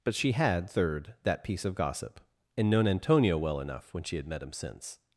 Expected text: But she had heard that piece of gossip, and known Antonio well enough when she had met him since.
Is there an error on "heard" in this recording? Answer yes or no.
yes